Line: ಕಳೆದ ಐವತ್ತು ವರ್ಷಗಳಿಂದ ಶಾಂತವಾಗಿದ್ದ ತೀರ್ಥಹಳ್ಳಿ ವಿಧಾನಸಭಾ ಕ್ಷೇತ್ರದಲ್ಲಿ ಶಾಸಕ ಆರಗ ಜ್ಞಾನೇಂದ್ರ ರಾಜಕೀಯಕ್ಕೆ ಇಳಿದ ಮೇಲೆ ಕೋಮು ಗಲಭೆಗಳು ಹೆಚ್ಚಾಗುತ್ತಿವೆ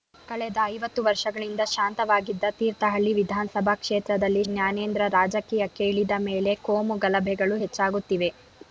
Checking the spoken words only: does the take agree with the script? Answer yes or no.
no